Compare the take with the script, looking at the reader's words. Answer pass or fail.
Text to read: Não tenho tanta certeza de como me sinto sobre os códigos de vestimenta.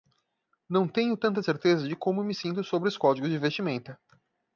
pass